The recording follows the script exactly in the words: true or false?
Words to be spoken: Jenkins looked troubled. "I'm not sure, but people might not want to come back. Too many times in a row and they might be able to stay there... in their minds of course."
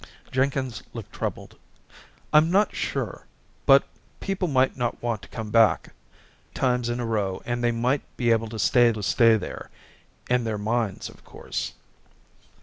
false